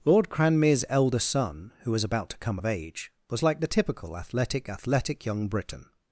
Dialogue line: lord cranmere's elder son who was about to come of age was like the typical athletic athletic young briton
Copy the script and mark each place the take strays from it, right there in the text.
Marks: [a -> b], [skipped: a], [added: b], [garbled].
lord cranmere's elder son who was about to come of age was like the typical athletic athletic young briton